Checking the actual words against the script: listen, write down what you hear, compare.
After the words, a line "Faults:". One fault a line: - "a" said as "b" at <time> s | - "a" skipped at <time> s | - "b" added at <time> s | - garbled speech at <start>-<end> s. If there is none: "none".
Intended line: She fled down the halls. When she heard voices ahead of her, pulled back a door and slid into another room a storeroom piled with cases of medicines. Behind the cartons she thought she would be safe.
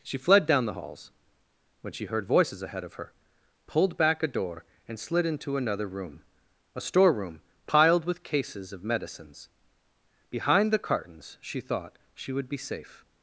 She fled down the halls. When she heard voices ahead of her, pulled back a door and slid into another room a storeroom piled with cases of medicines. Behind the cartons she thought she would be safe.
Faults:
none